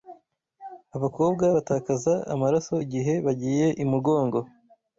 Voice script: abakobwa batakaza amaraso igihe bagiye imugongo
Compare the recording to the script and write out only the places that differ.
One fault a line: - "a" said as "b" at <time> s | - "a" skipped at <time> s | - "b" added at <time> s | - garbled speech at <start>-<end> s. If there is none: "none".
none